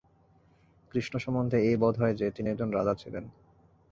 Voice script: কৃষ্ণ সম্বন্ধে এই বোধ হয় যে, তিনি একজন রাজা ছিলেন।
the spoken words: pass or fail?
pass